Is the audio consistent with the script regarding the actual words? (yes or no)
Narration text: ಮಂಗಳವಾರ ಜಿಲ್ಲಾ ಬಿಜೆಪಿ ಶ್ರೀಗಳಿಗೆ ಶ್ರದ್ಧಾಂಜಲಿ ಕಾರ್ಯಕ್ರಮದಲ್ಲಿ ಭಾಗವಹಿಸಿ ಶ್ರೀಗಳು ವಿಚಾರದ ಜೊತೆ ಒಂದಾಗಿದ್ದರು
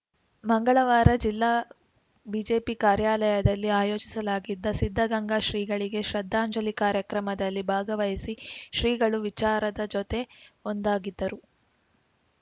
no